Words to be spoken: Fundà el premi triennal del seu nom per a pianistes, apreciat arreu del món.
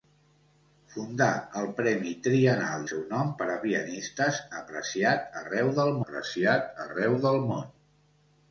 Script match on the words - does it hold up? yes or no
no